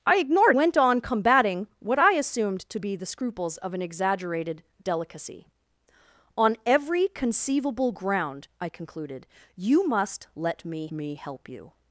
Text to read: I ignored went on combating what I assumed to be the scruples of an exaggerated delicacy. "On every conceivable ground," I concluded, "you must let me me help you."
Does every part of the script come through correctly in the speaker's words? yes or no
yes